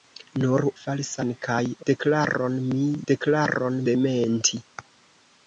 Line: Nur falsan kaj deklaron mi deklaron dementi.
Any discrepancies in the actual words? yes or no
no